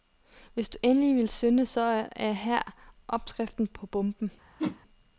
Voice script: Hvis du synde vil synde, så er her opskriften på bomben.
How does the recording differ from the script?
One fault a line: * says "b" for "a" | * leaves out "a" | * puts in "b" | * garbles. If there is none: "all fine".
* says "endelig" for "synde"